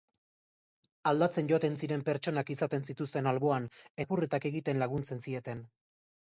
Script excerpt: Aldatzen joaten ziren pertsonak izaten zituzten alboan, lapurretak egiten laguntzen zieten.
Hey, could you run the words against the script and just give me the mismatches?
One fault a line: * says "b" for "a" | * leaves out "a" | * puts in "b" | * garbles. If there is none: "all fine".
all fine